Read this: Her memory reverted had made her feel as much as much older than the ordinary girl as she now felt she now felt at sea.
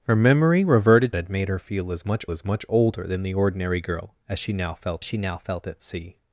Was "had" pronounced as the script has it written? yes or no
yes